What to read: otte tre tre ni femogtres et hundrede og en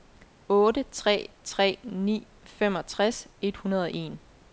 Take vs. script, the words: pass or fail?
pass